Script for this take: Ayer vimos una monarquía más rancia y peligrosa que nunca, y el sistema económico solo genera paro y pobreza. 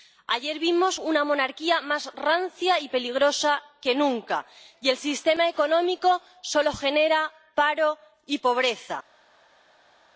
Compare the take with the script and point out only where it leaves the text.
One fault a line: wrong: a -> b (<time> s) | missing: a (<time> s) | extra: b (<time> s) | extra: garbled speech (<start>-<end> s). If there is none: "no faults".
no faults